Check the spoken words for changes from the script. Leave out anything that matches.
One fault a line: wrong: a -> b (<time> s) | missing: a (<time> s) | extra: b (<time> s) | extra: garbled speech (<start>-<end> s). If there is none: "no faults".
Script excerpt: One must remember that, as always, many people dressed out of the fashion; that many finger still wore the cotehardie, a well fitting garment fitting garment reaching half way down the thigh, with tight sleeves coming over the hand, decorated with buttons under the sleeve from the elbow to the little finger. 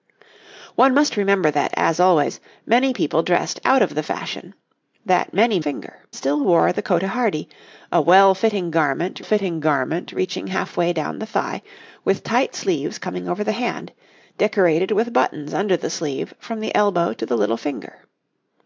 no faults